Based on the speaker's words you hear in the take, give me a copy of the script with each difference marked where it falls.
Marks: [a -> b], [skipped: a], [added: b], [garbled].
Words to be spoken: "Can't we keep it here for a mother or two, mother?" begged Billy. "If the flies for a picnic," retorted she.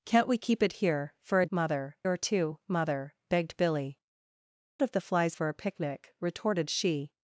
"Can't we keep it here for a mother or two, mother?" begged Billy. "If the flies for a picnic," retorted she.